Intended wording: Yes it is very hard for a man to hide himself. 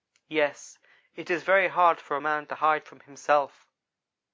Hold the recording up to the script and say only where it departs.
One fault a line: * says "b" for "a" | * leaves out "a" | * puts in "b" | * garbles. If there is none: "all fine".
* puts in "from"